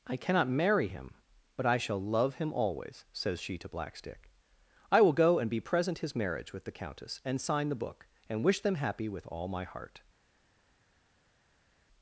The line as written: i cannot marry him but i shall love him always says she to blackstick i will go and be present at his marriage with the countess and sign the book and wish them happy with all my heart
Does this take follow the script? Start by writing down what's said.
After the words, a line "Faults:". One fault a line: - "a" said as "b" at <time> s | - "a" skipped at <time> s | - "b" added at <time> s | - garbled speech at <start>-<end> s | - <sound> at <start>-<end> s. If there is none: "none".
i cannot marry him but i shall love him always says she to blackstick i will go and be present his marriage with the countess and sign the book and wish them happy with all my heart
Faults:
- "at" skipped at 6.0 s